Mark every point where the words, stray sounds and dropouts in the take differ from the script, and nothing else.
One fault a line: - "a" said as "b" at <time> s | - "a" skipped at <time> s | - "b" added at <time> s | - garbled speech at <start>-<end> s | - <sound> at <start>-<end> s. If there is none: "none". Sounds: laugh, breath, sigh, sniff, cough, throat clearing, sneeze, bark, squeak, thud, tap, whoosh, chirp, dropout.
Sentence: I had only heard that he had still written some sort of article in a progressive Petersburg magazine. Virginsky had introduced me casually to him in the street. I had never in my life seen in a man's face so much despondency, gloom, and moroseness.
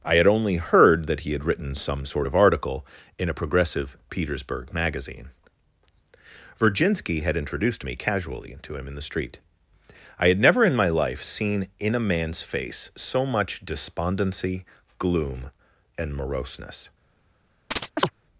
- "still" skipped at 1.4 s
- chirp at 17.7-18.1 s